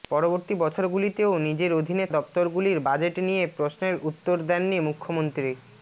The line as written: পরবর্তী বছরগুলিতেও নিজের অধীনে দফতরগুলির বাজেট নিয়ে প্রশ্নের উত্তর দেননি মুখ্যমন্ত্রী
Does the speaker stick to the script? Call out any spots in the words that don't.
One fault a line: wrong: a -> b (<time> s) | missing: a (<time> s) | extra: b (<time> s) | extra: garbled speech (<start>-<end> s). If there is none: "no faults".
no faults